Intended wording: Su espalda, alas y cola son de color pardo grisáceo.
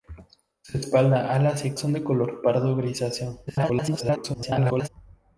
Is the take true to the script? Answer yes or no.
no